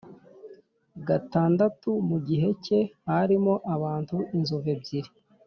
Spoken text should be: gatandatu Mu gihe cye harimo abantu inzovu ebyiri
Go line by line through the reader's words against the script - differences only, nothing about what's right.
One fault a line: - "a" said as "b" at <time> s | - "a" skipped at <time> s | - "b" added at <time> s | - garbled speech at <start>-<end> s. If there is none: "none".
none